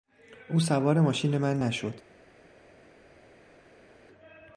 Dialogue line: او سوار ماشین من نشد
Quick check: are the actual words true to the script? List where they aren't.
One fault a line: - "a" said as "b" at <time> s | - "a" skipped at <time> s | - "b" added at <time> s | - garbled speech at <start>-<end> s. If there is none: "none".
none